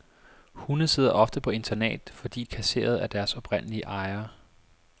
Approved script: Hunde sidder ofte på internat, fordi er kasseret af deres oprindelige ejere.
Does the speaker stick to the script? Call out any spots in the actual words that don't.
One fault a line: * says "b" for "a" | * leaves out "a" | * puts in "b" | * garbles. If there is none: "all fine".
all fine